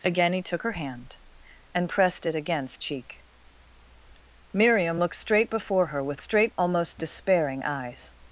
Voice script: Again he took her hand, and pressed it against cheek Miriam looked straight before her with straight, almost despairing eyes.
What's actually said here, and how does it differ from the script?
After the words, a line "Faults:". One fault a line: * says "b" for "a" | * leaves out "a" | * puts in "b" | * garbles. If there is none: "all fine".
Again he took her hand, and pressed it against cheek Miriam looked straight before her with straight, almost despairing eyes.
Faults:
all fine